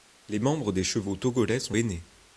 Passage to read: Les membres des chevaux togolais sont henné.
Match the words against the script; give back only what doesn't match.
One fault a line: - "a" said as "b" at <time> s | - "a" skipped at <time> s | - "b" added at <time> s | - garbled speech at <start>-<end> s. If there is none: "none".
none